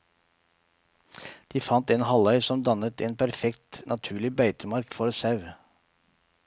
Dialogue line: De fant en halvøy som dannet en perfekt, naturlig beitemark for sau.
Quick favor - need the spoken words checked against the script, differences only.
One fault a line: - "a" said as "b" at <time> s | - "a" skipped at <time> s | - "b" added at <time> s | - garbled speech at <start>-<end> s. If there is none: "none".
none